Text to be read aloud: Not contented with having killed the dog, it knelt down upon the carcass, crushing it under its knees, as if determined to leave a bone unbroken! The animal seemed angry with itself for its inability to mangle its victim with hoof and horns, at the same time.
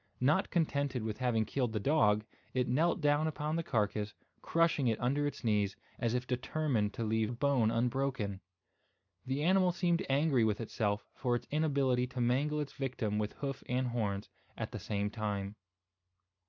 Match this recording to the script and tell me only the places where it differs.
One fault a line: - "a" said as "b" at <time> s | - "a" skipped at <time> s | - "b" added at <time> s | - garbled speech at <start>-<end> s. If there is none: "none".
none